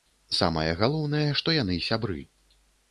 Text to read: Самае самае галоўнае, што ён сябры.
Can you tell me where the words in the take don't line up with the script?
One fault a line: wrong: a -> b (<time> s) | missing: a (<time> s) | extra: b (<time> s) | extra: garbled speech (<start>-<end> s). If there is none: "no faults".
missing: самае (0.7 s)
wrong: ён -> яны (1.6 s)